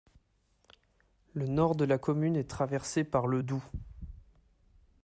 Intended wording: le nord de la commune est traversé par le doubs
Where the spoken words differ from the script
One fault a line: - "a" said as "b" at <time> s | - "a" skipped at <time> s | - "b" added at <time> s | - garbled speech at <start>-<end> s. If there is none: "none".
none